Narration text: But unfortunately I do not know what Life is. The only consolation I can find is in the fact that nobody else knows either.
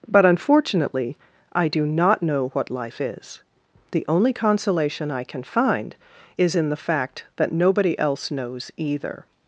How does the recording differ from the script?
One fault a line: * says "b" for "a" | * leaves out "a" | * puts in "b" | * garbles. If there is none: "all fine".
all fine